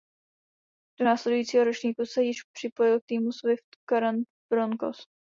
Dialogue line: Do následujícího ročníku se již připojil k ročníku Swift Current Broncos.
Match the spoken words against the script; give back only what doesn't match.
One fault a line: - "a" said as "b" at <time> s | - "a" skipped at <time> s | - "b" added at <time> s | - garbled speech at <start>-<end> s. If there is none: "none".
- "ročníku" said as "týmu" at 3.1 s